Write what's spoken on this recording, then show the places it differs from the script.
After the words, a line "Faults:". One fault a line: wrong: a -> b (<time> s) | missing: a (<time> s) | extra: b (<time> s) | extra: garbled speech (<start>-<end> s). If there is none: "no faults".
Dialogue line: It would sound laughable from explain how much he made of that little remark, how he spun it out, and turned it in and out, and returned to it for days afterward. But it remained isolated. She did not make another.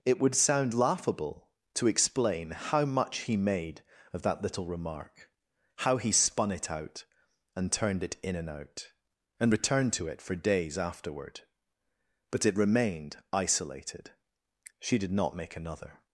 It would sound laughable to explain how much he made of that little remark, how he spun it out, and turned it in and out, and returned to it for days afterward. But it remained isolated. She did not make another.
Faults:
wrong: from -> to (1.8 s)